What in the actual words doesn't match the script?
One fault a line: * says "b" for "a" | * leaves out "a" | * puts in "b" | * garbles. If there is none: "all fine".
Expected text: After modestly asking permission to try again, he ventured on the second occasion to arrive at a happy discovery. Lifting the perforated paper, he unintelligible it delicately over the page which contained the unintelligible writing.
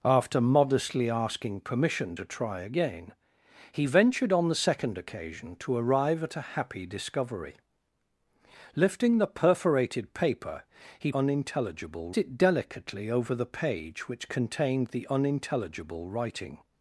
all fine